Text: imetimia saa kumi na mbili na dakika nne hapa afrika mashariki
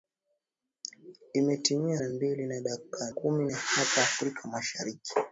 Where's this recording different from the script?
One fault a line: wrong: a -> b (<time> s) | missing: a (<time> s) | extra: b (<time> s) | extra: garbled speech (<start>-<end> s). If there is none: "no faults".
missing: saa kumi (2.0 s)
wrong: nne -> kumi (3.1 s)